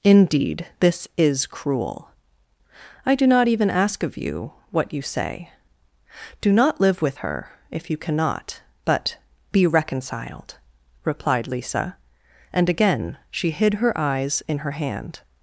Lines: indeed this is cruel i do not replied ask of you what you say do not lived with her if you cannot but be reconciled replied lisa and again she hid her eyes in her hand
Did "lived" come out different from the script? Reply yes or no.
yes